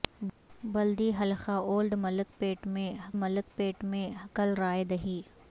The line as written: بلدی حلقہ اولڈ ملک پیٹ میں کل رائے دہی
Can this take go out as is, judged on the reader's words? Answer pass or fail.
fail